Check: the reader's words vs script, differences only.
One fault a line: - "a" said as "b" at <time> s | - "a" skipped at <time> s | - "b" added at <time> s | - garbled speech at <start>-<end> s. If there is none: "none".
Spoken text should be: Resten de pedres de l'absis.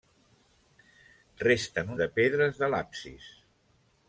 none